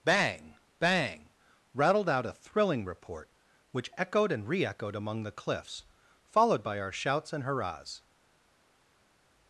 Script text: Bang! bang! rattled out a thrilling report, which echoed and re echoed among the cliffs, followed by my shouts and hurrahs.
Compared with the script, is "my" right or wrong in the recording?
wrong